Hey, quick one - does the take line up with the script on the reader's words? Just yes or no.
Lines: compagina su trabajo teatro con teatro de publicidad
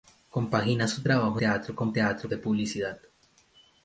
yes